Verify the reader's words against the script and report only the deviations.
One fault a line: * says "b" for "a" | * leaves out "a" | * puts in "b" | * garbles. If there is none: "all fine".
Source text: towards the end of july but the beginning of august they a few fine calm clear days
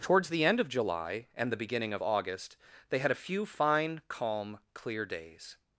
* says "and" for "but"
* puts in "had"